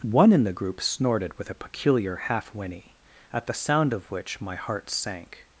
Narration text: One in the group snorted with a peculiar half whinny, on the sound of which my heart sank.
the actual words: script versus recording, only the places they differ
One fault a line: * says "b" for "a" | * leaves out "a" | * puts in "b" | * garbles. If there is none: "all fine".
* says "at" for "on"